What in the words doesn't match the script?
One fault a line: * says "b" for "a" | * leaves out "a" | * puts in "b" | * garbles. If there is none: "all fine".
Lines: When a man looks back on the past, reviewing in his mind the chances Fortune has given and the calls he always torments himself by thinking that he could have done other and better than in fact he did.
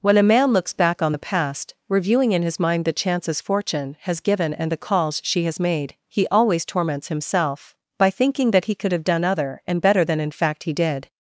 * puts in "she has made"